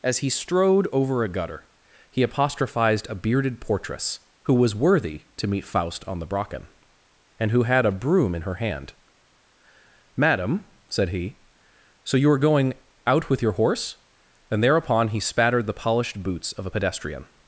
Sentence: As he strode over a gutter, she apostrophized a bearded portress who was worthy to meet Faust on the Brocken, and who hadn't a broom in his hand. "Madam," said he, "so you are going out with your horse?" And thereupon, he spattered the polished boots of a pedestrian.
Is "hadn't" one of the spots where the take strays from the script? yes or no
yes